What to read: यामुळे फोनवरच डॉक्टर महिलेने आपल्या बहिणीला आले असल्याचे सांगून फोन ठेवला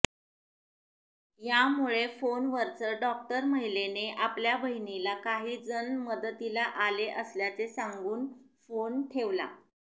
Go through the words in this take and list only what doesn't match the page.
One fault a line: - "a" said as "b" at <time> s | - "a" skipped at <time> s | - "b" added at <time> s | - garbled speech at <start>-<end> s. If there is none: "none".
- "काही जण मदतीला" added at 5.2 s